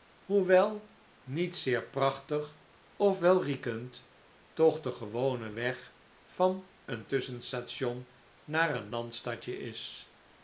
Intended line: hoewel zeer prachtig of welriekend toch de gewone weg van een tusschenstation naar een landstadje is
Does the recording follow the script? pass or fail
fail